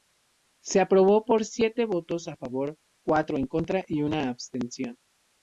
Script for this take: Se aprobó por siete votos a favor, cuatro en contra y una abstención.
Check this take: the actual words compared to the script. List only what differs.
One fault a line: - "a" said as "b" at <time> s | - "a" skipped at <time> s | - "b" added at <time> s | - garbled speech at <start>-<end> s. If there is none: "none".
none